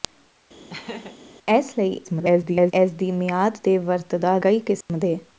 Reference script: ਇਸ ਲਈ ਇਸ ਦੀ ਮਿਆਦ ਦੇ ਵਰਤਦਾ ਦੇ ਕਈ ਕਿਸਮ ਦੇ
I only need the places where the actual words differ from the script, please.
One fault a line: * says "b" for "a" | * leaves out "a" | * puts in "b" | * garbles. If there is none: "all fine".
* garbles
* leaves out "ਦੇ"